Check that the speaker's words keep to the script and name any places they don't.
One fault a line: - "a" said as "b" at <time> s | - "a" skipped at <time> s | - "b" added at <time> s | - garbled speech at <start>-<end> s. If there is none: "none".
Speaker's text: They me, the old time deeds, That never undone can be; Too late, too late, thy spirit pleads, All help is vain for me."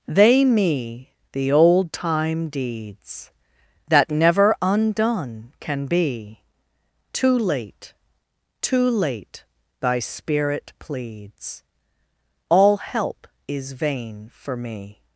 none